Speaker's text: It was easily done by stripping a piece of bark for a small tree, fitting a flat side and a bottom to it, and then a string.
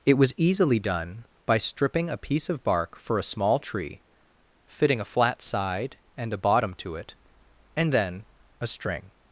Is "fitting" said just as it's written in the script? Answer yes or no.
yes